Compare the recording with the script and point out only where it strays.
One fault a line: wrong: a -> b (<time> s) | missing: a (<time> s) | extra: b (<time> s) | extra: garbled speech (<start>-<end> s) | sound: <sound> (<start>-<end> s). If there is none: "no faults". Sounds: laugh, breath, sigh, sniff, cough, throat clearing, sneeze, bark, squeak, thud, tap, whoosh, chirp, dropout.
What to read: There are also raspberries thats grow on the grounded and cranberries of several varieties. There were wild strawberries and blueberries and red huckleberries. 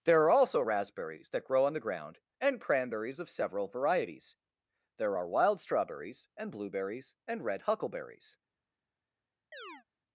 wrong: thats -> that (1.3 s)
wrong: grounded -> ground (1.8 s)
wrong: were -> are (5.2 s)
sound: chirp (9.5-9.8 s)